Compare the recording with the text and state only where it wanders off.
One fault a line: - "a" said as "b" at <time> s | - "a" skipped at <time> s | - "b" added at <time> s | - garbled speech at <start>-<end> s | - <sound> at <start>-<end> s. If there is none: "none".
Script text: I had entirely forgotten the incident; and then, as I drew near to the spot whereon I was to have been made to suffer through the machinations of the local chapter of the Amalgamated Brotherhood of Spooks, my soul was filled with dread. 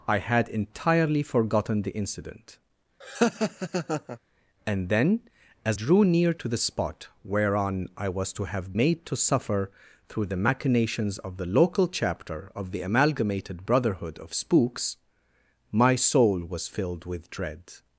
- laugh at 3.0-4.2 s
- "I" skipped at 5.8 s
- "been" skipped at 8.7 s